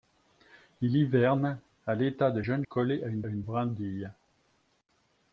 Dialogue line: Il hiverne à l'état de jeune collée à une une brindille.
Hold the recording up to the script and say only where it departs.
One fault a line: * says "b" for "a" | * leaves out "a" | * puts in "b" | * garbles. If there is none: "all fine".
all fine